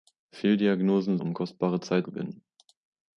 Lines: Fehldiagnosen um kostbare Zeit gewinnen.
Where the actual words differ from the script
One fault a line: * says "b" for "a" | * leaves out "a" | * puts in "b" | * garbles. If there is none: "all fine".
all fine